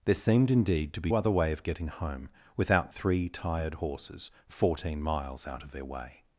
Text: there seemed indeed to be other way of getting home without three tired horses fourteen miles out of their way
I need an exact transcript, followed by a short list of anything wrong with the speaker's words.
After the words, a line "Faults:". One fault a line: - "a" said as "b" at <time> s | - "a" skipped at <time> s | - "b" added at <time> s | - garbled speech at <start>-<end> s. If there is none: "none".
there seemed indeed to be other way of getting home without three tired horses fourteen miles out of their way
Faults:
none